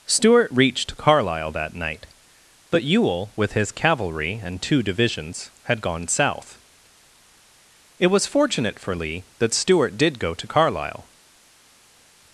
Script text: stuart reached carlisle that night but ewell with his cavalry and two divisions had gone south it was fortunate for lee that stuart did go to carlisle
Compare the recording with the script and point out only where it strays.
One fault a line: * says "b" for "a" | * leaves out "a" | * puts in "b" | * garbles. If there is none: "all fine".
all fine